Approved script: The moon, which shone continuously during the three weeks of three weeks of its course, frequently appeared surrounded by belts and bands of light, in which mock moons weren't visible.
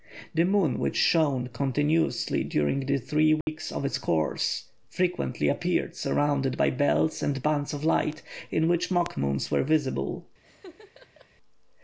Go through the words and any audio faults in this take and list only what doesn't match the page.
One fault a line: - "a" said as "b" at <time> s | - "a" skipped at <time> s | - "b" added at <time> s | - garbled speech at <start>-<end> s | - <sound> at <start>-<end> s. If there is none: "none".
- dropout at 3.4-3.5 s
- "three weeks of" skipped at 3.9 s
- "weren't" said as "were" at 9.5 s
- laugh at 10.4-11.3 s